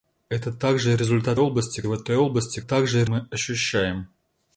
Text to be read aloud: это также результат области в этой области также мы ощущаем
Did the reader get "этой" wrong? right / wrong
right